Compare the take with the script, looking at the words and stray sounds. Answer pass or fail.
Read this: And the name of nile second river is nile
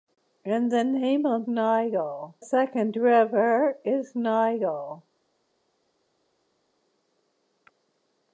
pass